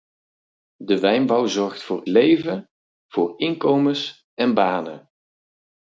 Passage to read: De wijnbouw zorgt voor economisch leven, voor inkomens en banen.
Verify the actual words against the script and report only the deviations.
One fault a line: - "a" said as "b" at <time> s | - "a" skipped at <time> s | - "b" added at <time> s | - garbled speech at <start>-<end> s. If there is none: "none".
- "economisch" skipped at 2.0 s